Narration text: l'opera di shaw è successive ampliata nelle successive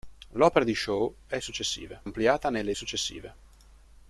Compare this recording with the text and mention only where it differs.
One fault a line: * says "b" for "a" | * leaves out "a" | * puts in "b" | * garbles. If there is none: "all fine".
all fine